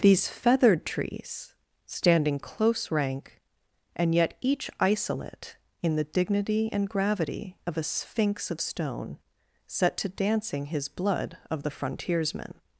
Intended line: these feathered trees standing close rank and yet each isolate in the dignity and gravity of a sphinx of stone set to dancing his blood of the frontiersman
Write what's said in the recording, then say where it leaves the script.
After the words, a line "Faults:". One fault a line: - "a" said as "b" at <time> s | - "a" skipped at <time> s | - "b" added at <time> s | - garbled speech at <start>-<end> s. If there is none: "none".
these feathered trees standing close rank and yet each isolate in the dignity and gravity of a sphinx of stone set to dancing his blood of the frontiersman
Faults:
none